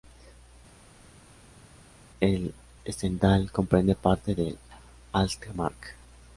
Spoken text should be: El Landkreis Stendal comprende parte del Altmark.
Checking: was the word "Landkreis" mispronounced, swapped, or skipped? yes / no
yes